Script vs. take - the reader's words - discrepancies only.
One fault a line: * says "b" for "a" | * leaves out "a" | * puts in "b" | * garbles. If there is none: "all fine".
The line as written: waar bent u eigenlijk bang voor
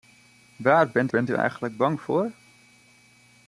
* puts in "bent"